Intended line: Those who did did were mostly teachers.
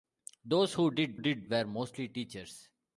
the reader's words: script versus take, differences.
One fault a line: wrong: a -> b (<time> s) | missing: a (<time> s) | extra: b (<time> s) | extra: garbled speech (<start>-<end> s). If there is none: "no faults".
no faults